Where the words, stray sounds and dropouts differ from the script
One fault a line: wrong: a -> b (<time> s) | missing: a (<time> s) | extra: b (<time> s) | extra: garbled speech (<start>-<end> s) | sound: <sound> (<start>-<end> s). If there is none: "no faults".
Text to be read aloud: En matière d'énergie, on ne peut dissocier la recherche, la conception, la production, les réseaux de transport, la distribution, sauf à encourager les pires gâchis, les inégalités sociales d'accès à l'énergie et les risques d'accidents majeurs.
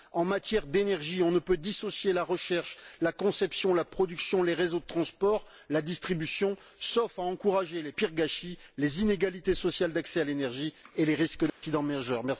sound: dropout (11.5-11.6 s)